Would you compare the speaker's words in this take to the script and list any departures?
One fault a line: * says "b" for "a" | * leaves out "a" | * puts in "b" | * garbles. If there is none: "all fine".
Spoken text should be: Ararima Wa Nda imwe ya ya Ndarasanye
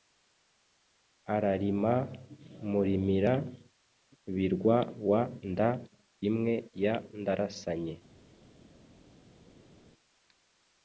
* puts in "Murimira birwa"
* leaves out "ya"